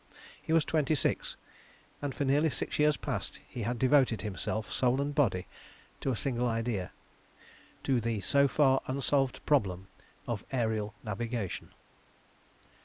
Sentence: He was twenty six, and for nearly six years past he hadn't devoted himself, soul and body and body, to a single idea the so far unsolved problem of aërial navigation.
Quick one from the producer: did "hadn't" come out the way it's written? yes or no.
no